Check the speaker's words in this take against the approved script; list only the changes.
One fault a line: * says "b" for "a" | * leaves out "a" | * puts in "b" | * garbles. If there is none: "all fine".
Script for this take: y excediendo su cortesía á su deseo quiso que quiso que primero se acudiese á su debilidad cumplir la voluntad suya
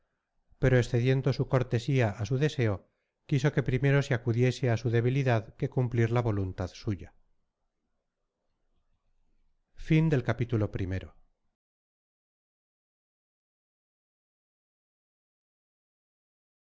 * says "pero" for "y"
* leaves out "quiso que"
* puts in "que"